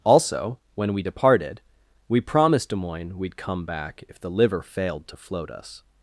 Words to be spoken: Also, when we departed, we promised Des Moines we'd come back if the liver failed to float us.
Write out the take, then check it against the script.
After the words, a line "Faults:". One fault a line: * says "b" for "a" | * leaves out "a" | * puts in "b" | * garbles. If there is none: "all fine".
Also, when we departed, we promised Des Moines we'd come back if the liver failed to float us.
Faults:
all fine